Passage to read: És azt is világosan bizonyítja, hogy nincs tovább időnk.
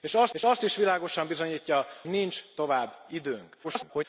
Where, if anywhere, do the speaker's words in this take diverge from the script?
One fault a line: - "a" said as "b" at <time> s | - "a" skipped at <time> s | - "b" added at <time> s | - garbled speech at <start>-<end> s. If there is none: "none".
- "és azt" added at 0.3 s
- "hogy" skipped at 1.9 s
- garbled speech at 3.6-4.0 s